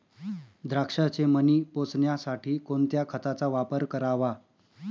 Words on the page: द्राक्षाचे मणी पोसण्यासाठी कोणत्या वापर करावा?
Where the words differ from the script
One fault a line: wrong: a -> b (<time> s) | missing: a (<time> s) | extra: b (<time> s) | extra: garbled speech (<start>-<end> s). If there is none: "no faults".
extra: खताचा (3.1 s)